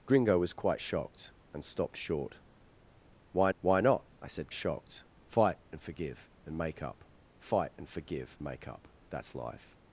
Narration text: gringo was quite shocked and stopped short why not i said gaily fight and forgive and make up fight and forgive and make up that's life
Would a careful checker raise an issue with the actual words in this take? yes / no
yes